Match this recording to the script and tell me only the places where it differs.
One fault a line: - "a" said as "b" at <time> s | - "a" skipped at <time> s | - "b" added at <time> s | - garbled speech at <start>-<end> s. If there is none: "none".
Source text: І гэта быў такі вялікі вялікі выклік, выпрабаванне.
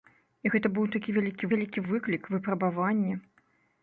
none